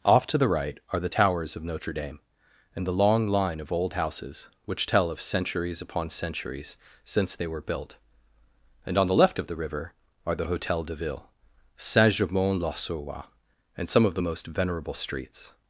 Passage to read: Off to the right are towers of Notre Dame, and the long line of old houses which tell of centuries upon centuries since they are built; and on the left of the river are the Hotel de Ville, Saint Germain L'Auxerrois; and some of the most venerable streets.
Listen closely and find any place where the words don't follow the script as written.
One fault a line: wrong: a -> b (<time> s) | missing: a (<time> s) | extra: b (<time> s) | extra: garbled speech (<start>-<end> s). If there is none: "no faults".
extra: the (1.0 s)
wrong: are -> were (7.5 s)